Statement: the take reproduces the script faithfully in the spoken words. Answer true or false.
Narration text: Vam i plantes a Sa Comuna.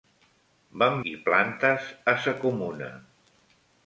true